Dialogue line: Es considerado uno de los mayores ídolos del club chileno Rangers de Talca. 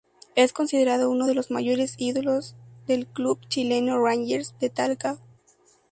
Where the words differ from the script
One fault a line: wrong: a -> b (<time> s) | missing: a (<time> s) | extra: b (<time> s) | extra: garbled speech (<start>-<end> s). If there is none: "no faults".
no faults